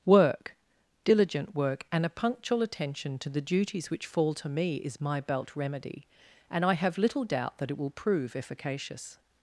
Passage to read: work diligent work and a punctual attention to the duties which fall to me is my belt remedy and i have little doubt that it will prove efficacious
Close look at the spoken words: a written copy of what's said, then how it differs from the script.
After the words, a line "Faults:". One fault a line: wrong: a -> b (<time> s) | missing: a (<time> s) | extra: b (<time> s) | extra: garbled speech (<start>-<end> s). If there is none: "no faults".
work diligent work and a punctual attention to the duties which fall to me is my belt remedy and i have little doubt that it will prove efficacious
Faults:
no faults